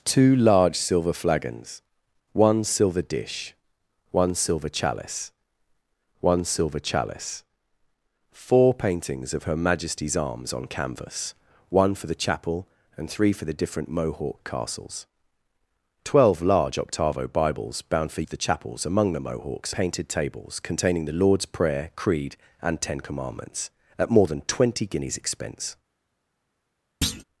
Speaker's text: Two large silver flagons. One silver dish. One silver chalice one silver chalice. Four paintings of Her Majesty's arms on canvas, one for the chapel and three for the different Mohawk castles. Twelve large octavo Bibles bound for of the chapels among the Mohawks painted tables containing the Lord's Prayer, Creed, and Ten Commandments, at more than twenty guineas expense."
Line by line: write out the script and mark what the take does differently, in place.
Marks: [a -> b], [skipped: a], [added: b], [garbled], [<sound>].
Two large silver flagons. One silver dish. One silver chalice one silver chalice. Four paintings of Her Majesty's arms on canvas, one for the chapel and three for the different Mohawk castles. Twelve large octavo Bibles bound for of the chapels among the Mohawks painted tables containing the Lord's Prayer, Creed, and Ten Commandments, at more than twenty guineas expense." [thud]